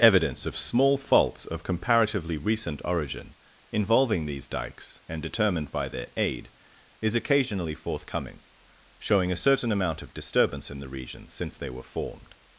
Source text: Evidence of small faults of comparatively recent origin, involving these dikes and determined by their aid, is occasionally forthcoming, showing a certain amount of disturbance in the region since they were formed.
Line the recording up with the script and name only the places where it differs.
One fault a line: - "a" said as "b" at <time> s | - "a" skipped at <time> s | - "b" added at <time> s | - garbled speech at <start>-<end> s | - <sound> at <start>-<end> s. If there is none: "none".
none